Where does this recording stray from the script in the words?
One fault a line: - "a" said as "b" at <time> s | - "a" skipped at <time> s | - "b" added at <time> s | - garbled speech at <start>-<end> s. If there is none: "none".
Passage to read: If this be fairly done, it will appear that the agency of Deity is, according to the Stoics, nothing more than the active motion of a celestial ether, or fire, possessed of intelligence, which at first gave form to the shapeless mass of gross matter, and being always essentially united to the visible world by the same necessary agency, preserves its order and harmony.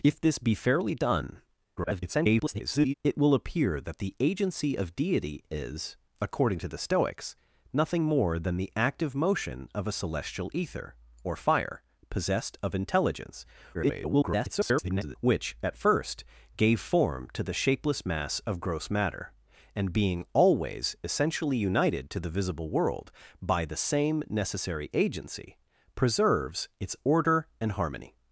- garbled speech at 1.8-2.9 s
- garbled speech at 13.7-15.2 s